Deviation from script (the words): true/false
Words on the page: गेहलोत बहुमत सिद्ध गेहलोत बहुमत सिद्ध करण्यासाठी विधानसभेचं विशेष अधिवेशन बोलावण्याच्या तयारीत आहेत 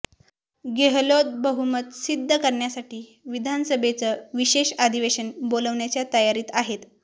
true